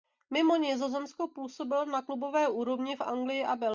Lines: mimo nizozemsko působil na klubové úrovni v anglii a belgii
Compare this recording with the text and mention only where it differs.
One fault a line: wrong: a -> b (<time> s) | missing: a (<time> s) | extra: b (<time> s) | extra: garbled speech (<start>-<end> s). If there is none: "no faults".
no faults